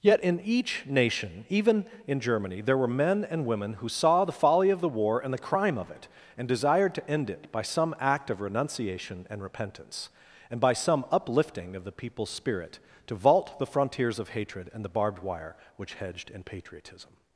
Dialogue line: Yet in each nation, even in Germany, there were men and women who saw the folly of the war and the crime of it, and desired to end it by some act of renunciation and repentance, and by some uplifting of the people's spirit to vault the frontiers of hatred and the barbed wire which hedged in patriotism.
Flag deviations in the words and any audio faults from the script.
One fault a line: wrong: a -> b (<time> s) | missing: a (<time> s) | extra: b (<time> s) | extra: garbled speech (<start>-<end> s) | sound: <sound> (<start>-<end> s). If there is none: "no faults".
no faults